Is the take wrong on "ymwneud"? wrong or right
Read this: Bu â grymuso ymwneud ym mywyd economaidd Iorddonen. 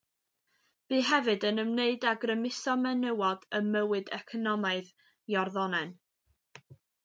wrong